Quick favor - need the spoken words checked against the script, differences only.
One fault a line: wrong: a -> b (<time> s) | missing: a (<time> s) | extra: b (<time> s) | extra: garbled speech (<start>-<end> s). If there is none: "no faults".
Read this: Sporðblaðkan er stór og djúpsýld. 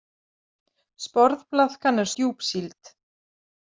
missing: stór og (2.1 s)